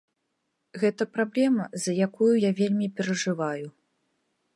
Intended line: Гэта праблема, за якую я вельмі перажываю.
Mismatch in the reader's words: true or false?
false